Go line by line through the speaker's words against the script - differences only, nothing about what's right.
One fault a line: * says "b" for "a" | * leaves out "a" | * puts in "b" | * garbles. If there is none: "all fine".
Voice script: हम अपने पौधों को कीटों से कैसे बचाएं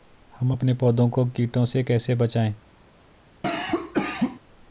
all fine